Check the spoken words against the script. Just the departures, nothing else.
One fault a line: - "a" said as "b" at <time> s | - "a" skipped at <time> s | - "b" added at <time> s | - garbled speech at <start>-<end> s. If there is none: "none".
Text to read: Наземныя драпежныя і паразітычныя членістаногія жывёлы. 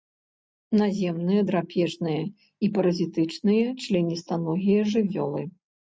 none